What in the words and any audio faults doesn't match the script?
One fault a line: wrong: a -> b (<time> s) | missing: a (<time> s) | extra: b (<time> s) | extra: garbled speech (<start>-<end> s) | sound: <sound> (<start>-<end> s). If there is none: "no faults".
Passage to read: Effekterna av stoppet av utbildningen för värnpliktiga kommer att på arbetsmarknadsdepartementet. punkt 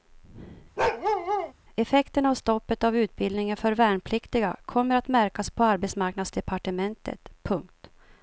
sound: bark (0.8-1.5 s)
extra: märkas (5.1 s)